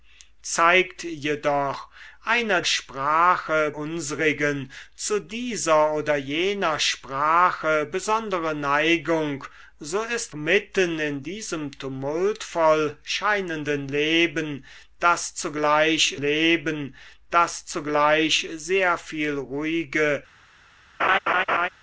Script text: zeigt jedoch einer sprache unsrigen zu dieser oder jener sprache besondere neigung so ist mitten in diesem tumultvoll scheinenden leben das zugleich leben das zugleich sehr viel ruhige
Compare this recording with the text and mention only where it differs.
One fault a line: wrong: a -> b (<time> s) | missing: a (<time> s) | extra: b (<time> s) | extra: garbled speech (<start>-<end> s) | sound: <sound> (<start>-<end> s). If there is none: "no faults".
sound: laugh (21.0-21.7 s)